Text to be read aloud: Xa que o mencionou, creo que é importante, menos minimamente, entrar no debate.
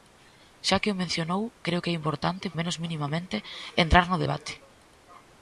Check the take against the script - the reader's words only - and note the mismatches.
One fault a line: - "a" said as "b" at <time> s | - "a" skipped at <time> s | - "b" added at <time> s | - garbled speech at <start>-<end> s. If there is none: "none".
none